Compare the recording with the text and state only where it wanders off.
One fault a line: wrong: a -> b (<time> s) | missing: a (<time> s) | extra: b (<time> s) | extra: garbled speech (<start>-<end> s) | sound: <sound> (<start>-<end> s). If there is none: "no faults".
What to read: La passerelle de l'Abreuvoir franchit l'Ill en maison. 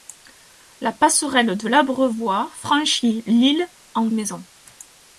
no faults